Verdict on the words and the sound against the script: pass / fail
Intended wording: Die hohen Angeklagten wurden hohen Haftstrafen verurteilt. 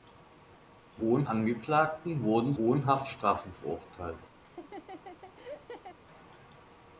fail